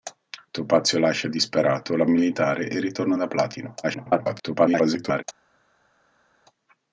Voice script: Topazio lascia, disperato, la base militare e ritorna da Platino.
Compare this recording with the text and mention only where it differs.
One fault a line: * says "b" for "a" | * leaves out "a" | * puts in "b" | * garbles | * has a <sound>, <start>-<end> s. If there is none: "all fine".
* leaves out "base"
* garbles